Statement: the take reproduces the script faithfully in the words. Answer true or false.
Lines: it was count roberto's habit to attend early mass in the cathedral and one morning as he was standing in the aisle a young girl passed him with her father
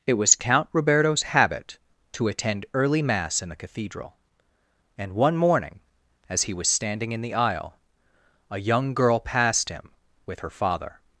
true